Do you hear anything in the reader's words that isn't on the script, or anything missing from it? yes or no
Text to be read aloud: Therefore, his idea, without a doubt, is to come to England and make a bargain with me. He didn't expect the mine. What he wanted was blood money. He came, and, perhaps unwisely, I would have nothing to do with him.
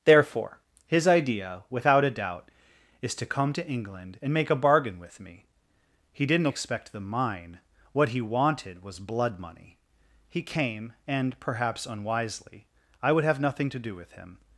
no